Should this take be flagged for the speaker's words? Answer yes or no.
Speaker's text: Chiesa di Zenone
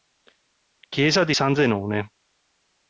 yes